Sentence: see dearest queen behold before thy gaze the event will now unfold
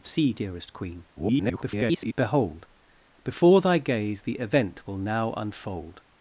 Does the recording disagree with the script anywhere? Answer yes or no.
yes